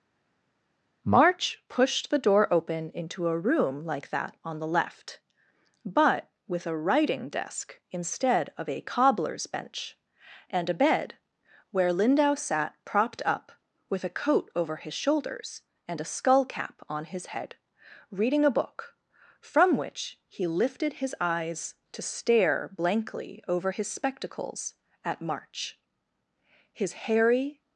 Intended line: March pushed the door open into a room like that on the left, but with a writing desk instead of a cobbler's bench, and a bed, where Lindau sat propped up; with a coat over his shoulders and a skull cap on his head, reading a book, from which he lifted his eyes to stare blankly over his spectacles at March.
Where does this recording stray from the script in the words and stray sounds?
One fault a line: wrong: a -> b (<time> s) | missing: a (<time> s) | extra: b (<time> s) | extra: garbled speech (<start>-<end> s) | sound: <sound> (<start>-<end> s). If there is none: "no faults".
extra: His hairy (26.7 s)